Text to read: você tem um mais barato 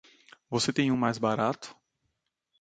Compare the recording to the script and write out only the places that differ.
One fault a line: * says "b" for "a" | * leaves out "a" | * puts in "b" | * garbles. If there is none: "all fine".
all fine